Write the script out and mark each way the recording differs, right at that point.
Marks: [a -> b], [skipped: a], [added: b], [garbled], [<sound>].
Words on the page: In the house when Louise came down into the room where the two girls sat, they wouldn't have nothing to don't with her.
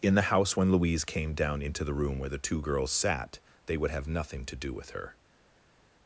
In the house when Louise came down into the room where the two girls sat, they [wouldn't -> would] have nothing to [don't -> do] with her.